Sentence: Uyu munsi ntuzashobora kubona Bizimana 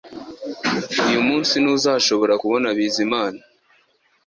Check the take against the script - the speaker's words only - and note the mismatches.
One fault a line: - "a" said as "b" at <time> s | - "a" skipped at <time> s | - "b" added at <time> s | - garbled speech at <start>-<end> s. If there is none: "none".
none